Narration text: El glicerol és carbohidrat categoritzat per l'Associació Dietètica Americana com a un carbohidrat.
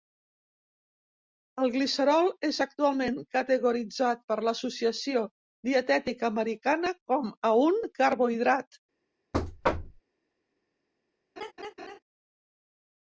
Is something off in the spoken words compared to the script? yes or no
yes